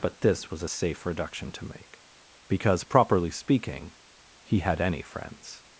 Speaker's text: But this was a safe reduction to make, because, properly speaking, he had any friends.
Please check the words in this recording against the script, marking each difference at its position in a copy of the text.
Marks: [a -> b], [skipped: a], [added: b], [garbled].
But this was a safe reduction to make, because, properly speaking, he had any friends.